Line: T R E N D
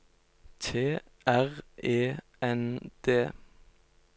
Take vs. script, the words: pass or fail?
pass